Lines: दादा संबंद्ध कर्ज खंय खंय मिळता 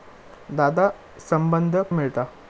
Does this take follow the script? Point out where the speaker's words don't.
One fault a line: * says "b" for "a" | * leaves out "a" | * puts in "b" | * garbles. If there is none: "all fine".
* leaves out "कर्ज खंय खंय"